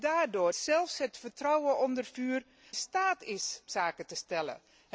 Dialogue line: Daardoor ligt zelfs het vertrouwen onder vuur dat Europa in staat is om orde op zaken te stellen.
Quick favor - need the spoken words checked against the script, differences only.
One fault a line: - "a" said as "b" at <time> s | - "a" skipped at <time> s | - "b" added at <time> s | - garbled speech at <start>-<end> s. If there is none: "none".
- "ligt" skipped at 0.5 s
- "dat Europa in" skipped at 2.4 s
- "om orde op" skipped at 3.6 s